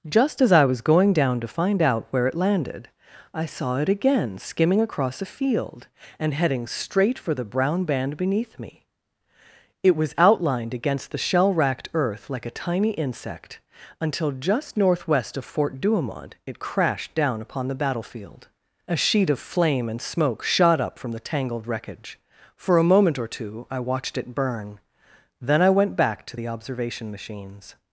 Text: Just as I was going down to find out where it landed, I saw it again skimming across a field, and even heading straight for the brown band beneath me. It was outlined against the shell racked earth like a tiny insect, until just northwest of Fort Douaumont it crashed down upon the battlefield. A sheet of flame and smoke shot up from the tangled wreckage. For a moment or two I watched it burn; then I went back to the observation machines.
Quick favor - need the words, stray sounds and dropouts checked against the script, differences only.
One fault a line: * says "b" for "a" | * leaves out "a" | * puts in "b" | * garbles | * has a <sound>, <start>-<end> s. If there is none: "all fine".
* leaves out "even"